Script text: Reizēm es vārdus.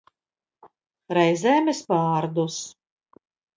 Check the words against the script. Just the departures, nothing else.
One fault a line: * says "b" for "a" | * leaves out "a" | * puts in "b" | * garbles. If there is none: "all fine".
all fine